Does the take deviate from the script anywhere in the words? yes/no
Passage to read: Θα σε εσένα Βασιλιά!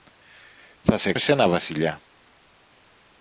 no